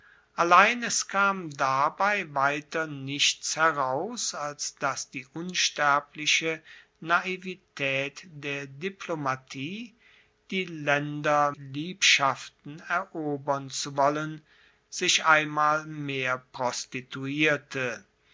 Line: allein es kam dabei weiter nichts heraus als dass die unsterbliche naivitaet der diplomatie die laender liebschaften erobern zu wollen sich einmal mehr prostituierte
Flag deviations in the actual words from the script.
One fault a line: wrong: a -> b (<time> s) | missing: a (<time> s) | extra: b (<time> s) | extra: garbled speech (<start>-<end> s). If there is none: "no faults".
no faults